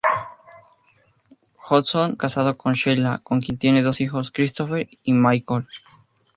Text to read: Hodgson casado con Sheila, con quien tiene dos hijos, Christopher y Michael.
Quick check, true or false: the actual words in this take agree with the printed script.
true